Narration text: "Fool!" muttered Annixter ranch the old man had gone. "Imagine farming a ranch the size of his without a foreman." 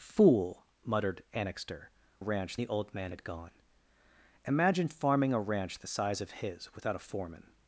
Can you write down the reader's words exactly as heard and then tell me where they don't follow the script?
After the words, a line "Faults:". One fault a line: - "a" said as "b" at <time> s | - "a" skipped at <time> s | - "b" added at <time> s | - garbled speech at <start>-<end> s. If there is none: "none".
"Fool!" muttered Annixter ranch the old man had gone. "Imagine farming a ranch the size of his without a foreman."
Faults:
none